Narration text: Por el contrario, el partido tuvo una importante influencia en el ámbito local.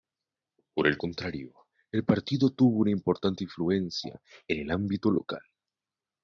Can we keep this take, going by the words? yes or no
yes